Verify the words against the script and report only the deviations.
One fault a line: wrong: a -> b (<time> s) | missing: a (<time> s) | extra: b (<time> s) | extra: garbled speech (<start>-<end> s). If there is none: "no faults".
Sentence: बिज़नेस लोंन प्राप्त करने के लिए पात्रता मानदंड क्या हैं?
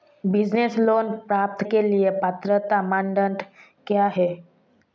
missing: करने (1.6 s)